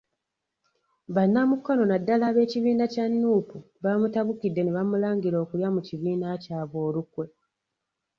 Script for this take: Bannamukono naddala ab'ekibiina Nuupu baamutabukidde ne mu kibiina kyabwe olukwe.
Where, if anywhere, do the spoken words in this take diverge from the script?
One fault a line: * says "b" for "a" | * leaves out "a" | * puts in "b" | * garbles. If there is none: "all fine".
* puts in "kya"
* puts in "bamulangira okulya"